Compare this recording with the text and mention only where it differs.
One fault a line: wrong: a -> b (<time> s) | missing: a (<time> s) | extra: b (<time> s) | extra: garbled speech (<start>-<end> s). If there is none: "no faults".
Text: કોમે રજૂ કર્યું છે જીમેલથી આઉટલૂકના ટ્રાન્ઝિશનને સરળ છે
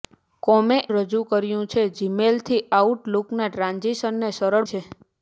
no faults